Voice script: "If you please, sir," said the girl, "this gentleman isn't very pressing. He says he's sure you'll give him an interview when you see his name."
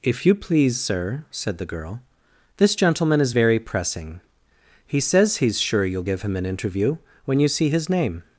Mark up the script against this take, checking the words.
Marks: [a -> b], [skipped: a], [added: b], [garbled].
"If you please, sir," said the girl, "this gentleman [isn't -> is] very pressing. He says he's sure you'll give him an interview when you see his name."